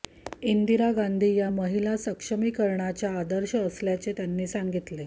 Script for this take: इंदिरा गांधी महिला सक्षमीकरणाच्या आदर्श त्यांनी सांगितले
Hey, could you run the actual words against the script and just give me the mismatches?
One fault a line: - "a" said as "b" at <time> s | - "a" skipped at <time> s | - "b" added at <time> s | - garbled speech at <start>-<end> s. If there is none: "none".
- "या" added at 1.3 s
- "असल्याचे" added at 3.6 s